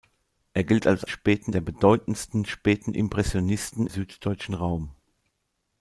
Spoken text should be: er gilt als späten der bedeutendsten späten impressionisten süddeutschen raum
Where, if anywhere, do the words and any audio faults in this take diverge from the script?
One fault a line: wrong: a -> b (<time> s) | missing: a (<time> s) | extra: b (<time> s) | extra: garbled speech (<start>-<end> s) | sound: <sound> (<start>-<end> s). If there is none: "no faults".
no faults